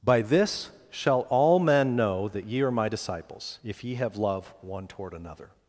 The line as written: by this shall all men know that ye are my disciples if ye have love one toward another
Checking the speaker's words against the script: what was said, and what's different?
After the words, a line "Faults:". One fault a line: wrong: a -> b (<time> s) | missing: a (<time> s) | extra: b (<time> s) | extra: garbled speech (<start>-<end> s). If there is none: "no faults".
by this shall all men know that ye are my disciples if ye have love one toward another
Faults:
no faults